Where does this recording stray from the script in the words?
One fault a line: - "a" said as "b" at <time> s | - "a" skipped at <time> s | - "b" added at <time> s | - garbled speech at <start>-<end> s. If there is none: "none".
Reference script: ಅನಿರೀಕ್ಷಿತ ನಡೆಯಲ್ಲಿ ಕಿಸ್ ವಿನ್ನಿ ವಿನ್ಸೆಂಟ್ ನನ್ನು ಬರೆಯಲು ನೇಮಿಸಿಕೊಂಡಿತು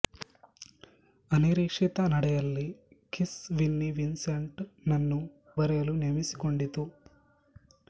none